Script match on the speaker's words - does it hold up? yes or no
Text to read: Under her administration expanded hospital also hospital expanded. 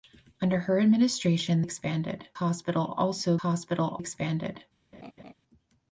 yes